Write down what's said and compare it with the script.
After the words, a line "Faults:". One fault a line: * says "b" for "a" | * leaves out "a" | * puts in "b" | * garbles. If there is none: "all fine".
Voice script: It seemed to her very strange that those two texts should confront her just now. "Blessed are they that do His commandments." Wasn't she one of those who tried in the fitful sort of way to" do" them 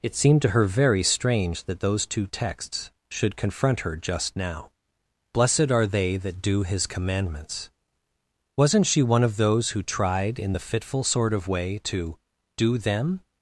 It seemed to her very strange that those two texts should confront her just now. "Blessed are they that do His commandments." Wasn't she one of those who tried in the fitful sort of way to" do" them
Faults:
all fine